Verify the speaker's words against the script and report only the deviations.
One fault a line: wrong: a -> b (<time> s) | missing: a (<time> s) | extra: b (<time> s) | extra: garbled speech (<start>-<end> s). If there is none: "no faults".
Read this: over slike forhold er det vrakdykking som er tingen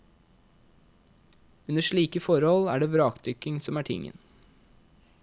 wrong: over -> under (1.7 s)